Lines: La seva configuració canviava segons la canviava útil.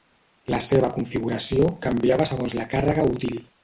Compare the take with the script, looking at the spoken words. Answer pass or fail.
fail